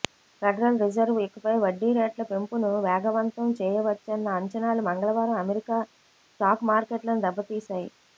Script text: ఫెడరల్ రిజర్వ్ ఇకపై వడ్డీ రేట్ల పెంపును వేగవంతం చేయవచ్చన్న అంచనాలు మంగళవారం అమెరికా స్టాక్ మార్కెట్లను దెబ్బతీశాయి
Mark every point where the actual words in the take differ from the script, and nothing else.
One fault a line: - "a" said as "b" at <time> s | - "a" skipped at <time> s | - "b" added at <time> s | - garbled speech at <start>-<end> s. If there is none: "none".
none